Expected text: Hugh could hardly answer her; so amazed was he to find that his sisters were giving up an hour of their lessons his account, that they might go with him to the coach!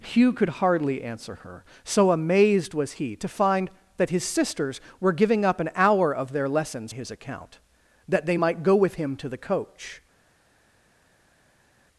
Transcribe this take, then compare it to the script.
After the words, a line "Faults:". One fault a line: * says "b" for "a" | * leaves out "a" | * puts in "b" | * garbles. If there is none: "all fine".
Hugh could hardly answer her; so amazed was he to find that his sisters were giving up an hour of their lessons his account, that they might go with him to the coach!
Faults:
all fine